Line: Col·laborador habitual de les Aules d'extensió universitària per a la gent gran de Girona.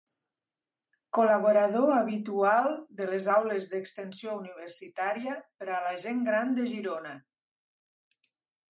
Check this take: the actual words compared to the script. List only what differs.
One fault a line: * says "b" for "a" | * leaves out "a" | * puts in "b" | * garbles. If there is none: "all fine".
all fine